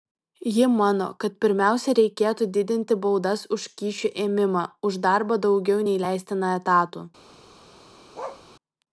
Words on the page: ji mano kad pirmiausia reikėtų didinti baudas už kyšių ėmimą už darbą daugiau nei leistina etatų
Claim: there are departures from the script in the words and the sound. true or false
true